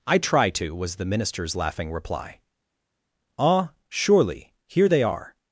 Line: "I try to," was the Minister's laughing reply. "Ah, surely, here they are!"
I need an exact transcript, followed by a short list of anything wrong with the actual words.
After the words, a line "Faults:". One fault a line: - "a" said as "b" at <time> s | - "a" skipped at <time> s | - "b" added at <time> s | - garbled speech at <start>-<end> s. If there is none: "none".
"I try to," was the Minister's laughing reply. "Ah, surely, here they are!"
Faults:
none